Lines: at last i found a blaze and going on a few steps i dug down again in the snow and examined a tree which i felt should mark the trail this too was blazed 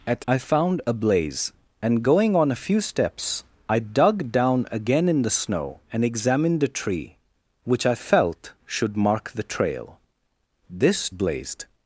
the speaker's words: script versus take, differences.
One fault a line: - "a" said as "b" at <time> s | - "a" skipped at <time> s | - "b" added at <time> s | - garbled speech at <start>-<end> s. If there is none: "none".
- "last" skipped at 0.2 s
- "too was" skipped at 11.1 s